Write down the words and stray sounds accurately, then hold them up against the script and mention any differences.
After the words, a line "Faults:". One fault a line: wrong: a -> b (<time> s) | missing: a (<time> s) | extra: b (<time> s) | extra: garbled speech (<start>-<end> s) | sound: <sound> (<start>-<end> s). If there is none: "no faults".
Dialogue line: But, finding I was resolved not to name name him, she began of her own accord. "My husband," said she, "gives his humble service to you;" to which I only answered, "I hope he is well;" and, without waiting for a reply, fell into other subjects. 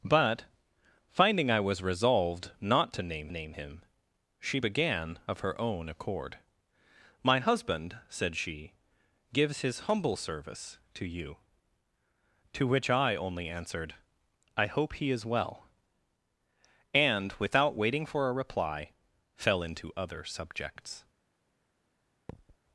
But, finding I was resolved not to name name him, she began of her own accord. "My husband," said she, "gives his humble service to you;" to which I only answered, "I hope he is well;" and, without waiting for a reply, fell into other subjects.
Faults:
sound: thud (22.3-22.6 s)